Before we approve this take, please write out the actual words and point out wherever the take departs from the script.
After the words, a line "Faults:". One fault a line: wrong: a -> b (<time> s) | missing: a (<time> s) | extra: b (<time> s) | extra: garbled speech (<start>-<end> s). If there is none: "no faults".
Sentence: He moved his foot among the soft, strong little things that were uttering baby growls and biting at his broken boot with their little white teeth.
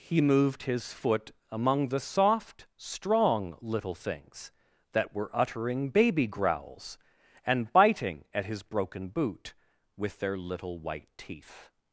He moved his foot among the soft, strong little things that were uttering baby growls and biting at his broken boot with their little white teeth.
Faults:
no faults